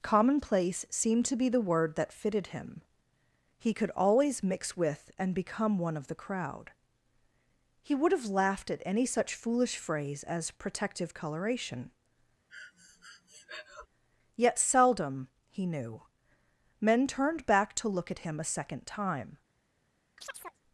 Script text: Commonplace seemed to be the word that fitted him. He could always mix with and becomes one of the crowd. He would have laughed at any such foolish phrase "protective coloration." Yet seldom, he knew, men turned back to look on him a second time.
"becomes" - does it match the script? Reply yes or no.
no